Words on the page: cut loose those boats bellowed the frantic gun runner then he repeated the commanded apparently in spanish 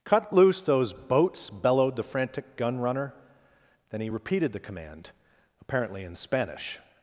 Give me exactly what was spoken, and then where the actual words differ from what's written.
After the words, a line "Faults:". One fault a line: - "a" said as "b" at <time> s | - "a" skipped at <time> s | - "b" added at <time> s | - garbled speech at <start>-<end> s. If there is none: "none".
cut loose those boats bellowed the frantic gun runner then he repeated the command apparently in spanish
Faults:
- "commanded" said as "command" at 4.6 s